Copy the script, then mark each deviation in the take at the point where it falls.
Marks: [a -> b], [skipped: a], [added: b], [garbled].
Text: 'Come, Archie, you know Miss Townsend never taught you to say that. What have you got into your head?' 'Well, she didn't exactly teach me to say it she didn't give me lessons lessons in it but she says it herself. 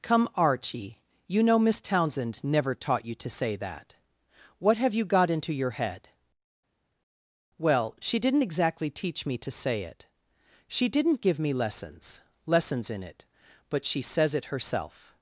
'Come, Archie, you know Miss Townsend never taught you to say that. What have you got into your head?' 'Well, she didn't exactly teach me to say it she didn't give me lessons lessons in it but she says it herself.